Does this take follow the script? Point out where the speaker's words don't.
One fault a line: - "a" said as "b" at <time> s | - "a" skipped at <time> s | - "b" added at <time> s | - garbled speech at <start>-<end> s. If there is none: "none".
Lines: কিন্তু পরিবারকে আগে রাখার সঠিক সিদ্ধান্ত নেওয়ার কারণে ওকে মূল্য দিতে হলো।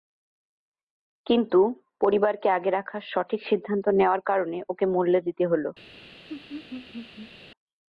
none